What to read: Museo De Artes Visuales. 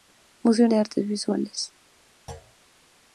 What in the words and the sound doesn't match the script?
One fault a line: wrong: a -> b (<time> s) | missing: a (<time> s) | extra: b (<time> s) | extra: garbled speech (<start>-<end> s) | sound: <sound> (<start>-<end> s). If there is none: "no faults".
sound: thud (2.3-2.5 s)